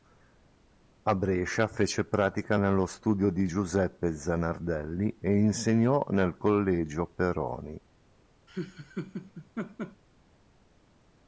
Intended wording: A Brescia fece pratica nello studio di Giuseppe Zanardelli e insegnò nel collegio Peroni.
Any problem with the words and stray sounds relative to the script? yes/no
yes